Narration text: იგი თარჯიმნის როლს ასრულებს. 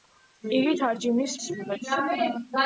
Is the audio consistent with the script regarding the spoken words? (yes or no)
no